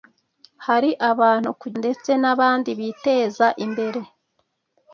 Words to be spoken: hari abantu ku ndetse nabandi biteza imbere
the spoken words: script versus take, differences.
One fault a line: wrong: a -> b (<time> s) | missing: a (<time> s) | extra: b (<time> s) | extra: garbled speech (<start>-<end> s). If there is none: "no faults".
no faults